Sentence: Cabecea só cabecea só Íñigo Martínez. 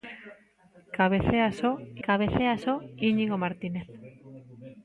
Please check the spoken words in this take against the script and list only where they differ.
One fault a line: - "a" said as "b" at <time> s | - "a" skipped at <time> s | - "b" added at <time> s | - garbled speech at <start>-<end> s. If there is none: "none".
none